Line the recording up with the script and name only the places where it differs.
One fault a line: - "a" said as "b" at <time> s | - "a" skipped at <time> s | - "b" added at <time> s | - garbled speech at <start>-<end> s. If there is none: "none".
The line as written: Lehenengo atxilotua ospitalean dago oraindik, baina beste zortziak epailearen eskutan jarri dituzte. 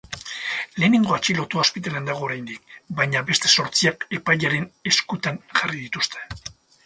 none